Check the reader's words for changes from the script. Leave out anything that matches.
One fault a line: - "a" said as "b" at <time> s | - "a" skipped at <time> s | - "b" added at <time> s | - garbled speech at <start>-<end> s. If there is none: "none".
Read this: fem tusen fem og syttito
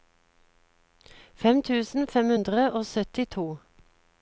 - "hundre" added at 2.3 s